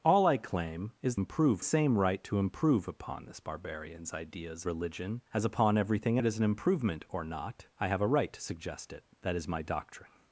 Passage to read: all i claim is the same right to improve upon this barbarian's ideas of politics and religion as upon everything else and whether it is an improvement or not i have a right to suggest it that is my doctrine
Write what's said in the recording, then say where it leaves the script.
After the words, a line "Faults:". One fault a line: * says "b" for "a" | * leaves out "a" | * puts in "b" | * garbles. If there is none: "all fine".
all i claim is improve same right to improve upon this barbarian's ideas religion as upon everything it is an improvement or not i have a right to suggest it that is my doctrine
Faults:
* says "improve" for "the"
* leaves out "of politics and"
* leaves out "else and whether"